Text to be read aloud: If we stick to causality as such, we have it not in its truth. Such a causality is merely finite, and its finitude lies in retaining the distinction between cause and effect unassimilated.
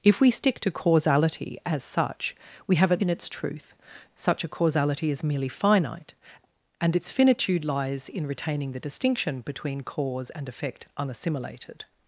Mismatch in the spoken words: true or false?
true